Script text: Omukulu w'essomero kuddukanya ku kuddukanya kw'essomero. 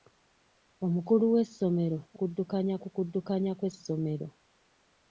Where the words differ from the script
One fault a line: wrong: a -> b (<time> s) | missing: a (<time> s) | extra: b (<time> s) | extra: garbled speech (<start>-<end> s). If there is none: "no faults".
no faults